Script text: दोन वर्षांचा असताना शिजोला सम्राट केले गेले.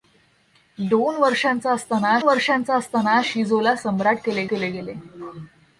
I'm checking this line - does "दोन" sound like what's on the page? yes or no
yes